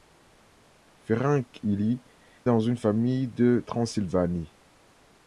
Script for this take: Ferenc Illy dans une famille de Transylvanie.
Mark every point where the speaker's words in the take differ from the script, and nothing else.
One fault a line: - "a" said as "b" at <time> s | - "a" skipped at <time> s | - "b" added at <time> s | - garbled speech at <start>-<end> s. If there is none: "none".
none